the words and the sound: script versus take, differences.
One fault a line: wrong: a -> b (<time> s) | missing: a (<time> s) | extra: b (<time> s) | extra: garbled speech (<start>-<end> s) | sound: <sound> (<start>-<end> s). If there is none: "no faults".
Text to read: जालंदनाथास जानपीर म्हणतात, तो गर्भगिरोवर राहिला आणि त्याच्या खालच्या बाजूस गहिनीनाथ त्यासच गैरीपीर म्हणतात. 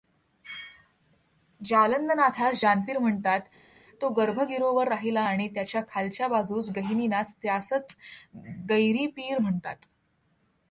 no faults